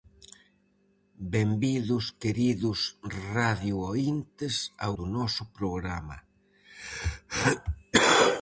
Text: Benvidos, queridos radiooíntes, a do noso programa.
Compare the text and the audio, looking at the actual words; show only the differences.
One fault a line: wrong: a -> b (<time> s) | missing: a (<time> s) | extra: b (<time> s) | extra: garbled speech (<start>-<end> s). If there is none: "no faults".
no faults